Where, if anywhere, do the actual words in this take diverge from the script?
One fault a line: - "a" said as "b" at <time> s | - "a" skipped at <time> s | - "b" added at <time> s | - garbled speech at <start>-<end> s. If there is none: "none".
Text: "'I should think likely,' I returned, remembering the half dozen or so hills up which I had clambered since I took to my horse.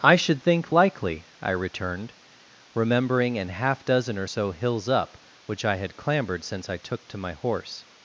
- "the" said as "an" at 3.4 s